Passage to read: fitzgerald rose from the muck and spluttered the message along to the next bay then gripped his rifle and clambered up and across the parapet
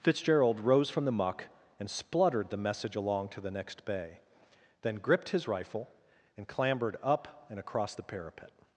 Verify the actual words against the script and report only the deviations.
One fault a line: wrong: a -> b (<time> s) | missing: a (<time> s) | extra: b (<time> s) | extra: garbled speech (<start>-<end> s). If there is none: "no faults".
no faults